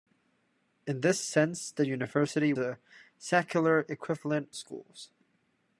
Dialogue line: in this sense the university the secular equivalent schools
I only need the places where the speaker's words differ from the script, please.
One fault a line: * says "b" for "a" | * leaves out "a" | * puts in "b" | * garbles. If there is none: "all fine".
all fine